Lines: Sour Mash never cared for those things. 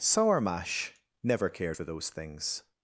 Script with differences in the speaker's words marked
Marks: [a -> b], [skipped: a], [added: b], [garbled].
Sour Mash never cared for those things.